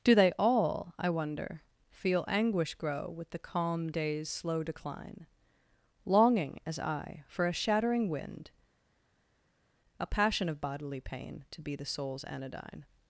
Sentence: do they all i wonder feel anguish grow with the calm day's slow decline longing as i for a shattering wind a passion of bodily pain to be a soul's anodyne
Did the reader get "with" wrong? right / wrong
right